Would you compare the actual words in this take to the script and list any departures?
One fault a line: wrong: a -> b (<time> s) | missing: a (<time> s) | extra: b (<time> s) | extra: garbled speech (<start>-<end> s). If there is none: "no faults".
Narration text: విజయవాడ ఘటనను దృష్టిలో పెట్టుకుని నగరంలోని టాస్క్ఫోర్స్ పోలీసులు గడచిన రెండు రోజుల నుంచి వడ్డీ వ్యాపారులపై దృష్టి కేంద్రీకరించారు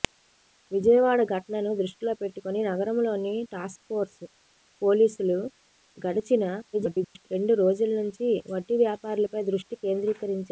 extra: garbled speech (6.7-7.3 s)